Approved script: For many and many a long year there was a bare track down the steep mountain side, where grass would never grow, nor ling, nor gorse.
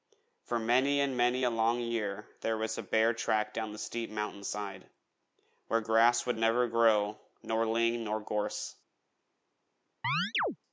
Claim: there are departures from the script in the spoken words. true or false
false